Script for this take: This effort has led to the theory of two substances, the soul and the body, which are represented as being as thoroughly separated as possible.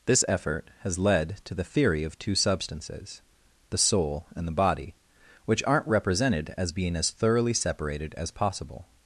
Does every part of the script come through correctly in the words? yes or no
no